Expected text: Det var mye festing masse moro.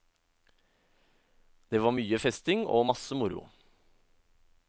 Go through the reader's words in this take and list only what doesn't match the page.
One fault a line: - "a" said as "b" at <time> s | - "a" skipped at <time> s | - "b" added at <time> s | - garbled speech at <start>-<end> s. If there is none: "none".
- "og" added at 2.6 s